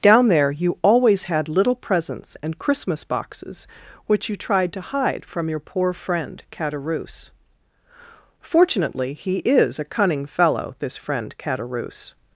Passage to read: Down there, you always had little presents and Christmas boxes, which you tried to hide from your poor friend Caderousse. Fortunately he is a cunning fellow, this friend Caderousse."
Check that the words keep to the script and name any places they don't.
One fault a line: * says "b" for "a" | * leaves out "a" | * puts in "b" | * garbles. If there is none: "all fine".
all fine